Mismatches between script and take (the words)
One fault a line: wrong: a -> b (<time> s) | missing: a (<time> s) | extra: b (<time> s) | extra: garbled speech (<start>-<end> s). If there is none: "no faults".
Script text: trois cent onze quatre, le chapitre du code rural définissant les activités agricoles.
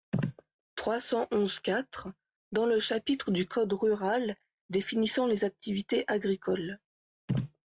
extra: dans (2.5 s)